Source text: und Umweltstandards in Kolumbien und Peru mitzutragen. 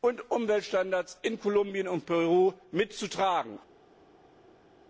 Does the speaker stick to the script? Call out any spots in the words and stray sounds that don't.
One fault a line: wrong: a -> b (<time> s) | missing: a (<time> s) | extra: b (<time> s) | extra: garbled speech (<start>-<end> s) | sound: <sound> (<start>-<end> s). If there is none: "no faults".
no faults